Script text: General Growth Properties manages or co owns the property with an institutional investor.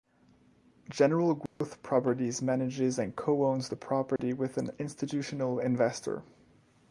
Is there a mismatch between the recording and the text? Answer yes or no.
yes